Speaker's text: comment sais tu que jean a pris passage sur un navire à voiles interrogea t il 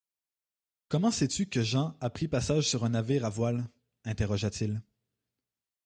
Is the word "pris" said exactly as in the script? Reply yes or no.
yes